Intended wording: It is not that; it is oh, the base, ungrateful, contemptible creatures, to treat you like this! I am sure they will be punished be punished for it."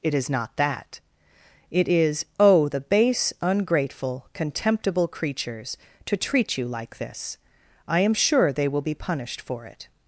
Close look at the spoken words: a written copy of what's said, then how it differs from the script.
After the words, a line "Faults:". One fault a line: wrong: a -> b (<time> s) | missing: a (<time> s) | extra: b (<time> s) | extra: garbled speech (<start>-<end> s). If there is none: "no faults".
It is not that; it is oh, the base, ungrateful, contemptible creatures, to treat you like this! I am sure they will be punished for it."
Faults:
missing: be punished (9.4 s)